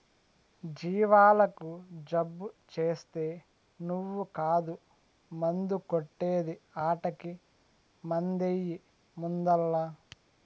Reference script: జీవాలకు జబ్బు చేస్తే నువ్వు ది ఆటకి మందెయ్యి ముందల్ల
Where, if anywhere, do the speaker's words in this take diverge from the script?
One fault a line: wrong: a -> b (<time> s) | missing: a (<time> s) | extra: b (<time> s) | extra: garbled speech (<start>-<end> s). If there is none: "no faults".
extra: కాదు మందు కొట్టే (4.3 s)